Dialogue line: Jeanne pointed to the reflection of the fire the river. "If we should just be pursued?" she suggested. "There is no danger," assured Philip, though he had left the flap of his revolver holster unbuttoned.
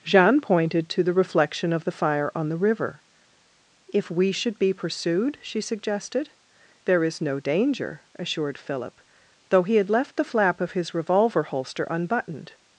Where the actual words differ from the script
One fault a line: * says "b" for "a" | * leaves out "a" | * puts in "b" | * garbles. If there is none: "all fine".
* puts in "on"
* leaves out "just"